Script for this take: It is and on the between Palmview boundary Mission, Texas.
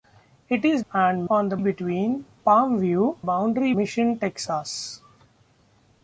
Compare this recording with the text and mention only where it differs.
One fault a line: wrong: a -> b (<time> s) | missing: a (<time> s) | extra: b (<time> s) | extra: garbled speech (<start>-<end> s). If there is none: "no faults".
no faults